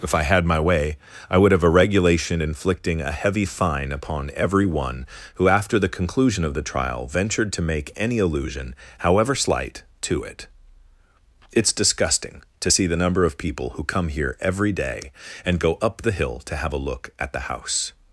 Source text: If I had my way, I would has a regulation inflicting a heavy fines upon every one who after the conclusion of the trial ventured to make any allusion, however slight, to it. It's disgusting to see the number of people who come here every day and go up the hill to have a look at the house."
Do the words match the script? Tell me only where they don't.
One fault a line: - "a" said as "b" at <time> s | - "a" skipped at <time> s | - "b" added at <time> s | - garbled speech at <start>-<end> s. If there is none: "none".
- "has" said as "have" at 1.5 s
- "fines" said as "fine" at 3.5 s